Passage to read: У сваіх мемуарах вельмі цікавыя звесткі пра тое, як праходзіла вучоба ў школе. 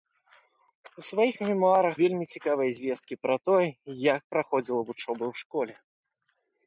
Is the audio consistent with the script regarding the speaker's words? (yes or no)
yes